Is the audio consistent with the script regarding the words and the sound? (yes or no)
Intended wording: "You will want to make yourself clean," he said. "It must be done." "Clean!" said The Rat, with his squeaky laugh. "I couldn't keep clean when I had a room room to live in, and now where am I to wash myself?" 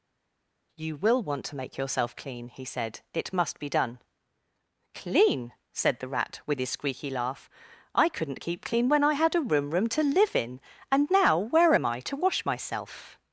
yes